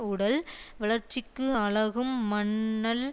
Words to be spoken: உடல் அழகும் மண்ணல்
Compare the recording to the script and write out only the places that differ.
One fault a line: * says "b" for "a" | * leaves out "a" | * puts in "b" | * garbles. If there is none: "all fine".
* puts in "வளர்ச்சிக்கு"